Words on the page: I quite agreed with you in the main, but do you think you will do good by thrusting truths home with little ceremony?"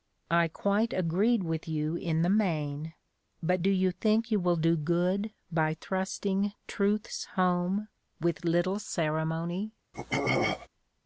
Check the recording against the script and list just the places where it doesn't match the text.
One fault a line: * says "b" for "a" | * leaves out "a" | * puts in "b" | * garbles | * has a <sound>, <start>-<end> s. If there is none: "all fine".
* has a throat clearing, 9.9-10.7 s